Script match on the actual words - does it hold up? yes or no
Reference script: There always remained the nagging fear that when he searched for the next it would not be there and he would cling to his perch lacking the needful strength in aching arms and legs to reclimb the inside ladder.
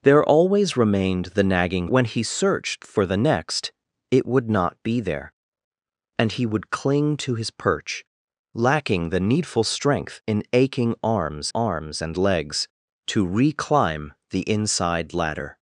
no